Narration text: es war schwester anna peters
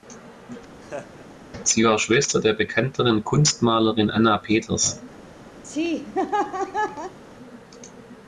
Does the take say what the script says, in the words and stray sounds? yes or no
no